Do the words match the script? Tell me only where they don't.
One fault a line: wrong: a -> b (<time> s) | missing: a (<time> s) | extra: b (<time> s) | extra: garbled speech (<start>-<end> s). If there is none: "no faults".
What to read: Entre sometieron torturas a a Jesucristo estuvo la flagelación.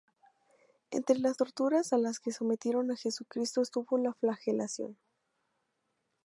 wrong: sometieron -> las (1.2 s)
extra: las que sometieron (2.0 s)